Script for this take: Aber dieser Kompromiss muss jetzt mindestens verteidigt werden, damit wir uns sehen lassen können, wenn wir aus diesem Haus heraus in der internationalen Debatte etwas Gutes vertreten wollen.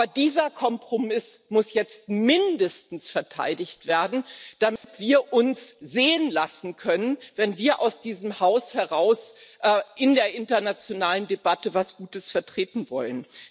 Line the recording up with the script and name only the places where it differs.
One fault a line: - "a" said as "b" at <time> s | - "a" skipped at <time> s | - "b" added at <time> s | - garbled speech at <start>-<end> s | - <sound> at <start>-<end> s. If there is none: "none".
- dropout at 4.8-4.8 s